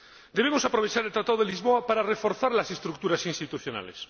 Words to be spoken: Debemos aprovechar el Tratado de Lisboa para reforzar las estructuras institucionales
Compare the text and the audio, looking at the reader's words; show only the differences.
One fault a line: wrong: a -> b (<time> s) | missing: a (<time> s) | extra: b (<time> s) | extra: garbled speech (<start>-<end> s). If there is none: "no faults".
no faults